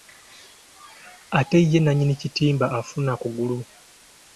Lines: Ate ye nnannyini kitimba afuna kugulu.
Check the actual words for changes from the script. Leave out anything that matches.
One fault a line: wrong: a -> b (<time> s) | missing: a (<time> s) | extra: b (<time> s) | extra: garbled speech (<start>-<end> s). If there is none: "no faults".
no faults